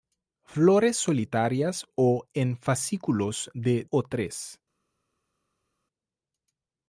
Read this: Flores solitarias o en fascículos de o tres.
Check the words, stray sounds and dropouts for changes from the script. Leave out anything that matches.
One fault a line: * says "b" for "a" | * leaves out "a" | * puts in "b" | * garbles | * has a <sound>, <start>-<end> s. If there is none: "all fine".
all fine